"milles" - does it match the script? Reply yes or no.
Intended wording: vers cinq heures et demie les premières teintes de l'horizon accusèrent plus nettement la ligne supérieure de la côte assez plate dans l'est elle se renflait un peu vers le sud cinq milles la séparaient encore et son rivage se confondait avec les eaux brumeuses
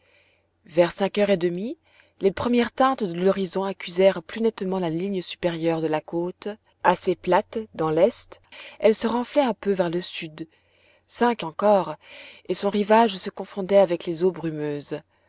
no